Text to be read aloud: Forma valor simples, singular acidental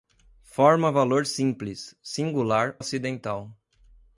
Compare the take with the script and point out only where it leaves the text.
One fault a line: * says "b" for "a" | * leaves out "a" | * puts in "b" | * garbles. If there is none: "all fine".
all fine